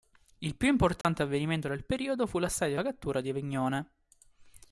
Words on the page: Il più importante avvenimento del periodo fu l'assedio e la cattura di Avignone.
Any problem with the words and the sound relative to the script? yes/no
yes